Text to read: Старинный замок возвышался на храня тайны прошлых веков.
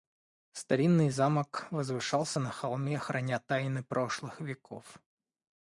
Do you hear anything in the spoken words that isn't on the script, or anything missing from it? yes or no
yes